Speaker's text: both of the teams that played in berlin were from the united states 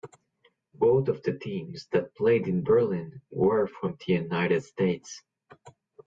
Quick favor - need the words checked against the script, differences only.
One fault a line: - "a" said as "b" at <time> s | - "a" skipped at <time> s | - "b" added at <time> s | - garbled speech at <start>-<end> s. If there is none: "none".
none